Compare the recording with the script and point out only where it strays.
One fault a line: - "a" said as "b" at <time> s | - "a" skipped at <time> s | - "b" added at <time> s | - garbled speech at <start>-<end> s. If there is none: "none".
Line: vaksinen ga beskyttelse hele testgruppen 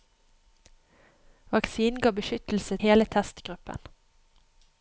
none